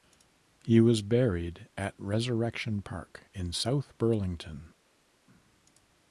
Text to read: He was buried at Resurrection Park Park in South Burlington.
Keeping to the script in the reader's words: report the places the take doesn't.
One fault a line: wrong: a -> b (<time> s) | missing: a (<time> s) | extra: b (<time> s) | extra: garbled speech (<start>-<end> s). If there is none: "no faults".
missing: Park (3.2 s)